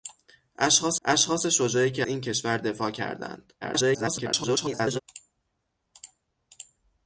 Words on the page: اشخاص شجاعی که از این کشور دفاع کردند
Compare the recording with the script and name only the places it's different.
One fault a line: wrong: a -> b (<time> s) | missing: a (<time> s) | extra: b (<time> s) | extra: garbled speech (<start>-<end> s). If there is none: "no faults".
extra: اشخاص (1.0 s)
missing: از (2.0 s)
extra: garbled speech (3.6-5.0 s)